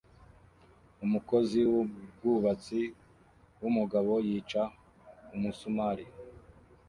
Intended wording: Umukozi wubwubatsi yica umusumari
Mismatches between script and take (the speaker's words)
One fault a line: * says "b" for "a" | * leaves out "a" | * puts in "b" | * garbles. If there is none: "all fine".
* puts in "wumugabo"